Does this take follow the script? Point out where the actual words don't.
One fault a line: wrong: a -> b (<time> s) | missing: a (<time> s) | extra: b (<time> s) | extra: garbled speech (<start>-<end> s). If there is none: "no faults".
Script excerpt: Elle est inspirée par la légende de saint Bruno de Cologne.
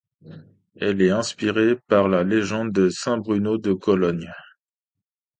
no faults